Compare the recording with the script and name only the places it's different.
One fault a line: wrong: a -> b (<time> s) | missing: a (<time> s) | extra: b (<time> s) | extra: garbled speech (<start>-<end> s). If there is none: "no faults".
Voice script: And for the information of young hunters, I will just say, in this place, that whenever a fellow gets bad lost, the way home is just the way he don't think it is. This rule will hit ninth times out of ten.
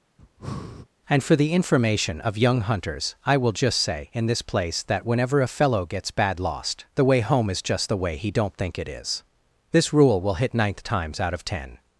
no faults